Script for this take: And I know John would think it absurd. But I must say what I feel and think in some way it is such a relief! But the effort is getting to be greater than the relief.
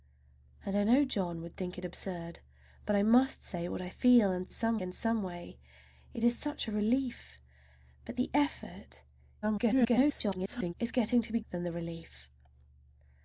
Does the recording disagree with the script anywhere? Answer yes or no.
yes